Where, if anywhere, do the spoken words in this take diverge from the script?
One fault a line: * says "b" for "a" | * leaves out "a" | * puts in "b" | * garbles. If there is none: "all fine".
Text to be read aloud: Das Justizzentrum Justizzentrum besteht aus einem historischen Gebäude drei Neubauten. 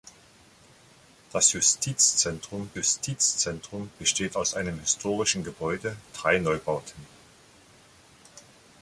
all fine